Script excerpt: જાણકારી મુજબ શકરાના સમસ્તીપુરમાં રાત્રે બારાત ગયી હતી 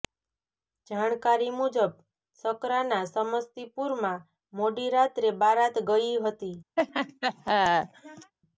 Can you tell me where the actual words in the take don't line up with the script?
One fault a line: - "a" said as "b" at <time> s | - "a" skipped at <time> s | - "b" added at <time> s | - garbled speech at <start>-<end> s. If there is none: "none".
- "મોડી" added at 4.5 s